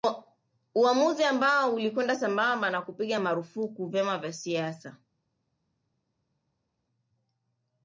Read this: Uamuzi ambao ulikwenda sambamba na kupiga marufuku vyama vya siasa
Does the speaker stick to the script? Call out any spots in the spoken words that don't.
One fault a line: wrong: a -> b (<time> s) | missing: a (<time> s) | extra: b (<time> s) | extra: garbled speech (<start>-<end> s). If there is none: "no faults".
no faults